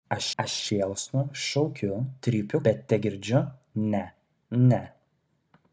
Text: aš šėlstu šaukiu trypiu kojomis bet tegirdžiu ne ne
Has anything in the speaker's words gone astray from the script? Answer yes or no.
yes